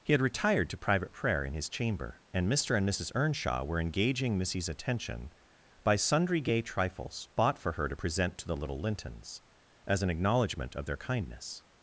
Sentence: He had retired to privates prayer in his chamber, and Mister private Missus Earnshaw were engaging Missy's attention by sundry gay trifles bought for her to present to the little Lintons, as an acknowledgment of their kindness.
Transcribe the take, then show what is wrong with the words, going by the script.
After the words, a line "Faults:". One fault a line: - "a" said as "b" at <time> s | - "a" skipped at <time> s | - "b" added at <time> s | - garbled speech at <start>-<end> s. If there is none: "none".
He had retired to private prayer in his chamber, and Mister and Missus Earnshaw were engaging Missy's attention by sundry gay trifles bought for her to present to the little Lintons, as an acknowledgment of their kindness.
Faults:
- "privates" said as "private" at 0.8 s
- "private" said as "and" at 2.7 s